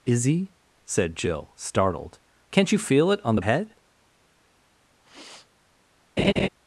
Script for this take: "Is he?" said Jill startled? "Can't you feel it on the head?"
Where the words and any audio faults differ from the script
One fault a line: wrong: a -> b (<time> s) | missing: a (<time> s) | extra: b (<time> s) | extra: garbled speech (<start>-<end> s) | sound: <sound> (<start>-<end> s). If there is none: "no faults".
sound: sniff (5.0-5.5 s)
sound: laugh (6.2-6.5 s)